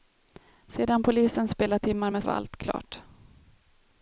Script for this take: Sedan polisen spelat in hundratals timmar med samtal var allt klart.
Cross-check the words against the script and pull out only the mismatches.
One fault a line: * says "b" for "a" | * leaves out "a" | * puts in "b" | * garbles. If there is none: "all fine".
* leaves out "in hundratals"
* leaves out "samtal"